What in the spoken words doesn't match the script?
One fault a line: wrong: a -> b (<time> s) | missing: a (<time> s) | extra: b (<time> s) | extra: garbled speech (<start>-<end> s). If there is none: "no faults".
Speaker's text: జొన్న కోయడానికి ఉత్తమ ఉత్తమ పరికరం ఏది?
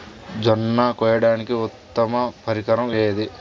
missing: ఉత్తమ (2.1 s)